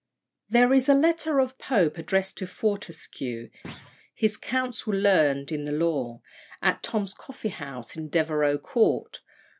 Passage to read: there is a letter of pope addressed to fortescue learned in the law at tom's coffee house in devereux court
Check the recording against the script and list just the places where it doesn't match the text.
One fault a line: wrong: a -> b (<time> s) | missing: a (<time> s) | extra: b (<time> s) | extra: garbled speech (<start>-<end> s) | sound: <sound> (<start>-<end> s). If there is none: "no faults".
sound: thud (3.6-4.0 s)
extra: his counsel (4.1 s)